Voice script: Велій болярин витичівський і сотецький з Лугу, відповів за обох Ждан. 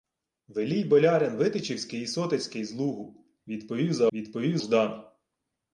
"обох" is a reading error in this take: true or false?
true